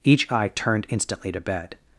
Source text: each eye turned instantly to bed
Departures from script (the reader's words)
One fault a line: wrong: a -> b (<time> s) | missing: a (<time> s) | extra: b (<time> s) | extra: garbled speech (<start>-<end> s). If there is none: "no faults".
no faults